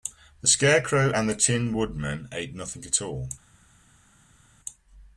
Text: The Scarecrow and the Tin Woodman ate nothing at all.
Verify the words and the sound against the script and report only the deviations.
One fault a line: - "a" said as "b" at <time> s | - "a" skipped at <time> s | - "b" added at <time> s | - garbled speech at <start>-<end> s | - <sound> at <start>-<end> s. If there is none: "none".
none